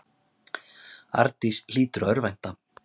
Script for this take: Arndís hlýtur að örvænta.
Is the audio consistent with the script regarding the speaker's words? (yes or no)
yes